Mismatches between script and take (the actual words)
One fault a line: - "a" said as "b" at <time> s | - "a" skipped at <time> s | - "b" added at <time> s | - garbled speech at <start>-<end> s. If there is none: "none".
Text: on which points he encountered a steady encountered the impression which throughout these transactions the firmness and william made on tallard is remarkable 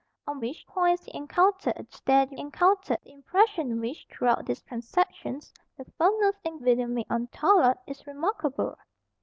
none